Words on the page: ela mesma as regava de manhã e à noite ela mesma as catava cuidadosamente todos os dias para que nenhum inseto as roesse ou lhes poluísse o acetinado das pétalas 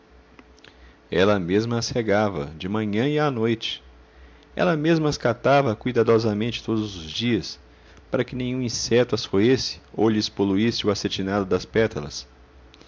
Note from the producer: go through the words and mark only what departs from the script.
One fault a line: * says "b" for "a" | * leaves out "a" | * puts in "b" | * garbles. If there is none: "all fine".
all fine